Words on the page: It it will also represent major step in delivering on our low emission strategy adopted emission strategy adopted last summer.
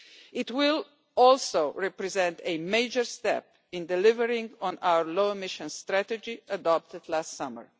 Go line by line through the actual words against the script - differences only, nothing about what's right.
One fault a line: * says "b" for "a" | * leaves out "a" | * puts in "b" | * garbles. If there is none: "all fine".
* leaves out "it"
* puts in "a"
* leaves out "emission strategy adopted"